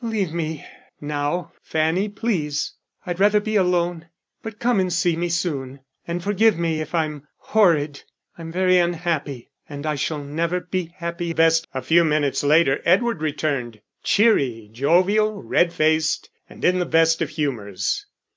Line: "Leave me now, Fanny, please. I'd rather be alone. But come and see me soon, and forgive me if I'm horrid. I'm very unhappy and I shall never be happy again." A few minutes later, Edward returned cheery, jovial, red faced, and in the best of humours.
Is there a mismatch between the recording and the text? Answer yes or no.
yes